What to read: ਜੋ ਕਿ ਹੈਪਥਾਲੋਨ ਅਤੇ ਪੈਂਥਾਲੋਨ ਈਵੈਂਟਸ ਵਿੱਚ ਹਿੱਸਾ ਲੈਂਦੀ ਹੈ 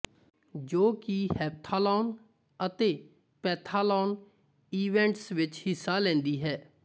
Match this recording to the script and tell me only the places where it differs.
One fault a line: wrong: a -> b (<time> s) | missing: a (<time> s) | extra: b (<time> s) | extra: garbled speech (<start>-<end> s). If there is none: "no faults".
no faults